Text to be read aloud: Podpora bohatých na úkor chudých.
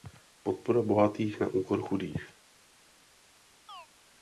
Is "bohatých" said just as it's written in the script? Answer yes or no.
yes